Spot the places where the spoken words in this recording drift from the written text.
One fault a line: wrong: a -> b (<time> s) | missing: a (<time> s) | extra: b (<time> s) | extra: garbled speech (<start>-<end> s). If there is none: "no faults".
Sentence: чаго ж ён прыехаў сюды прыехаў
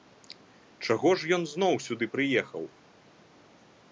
wrong: прыехаў -> зноў (1.5 s)